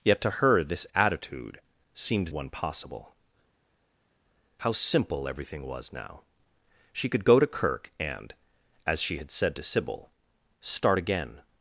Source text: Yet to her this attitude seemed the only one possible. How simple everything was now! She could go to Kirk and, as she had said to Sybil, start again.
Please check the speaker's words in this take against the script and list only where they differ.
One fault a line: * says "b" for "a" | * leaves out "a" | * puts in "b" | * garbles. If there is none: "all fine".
* leaves out "the only"